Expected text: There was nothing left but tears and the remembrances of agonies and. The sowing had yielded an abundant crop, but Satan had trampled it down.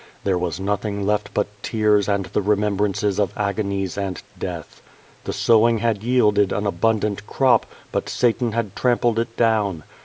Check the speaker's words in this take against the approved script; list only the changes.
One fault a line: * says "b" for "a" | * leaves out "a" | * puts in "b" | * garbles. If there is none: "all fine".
* puts in "death"